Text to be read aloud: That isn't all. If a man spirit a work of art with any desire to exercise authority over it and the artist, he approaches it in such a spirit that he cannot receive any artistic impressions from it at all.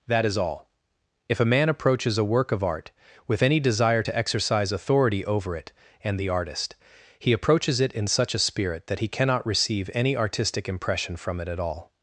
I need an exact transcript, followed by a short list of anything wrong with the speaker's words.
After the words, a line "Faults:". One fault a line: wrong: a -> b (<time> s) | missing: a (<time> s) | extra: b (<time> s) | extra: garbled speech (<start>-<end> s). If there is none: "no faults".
That is all. If a man approaches a work of art with any desire to exercise authority over it and the artist, he approaches it in such a spirit that he cannot receive any artistic impression from it at all.
Faults:
wrong: isn't -> is (0.2 s)
wrong: spirit -> approaches (1.7 s)
wrong: impressions -> impression (10.7 s)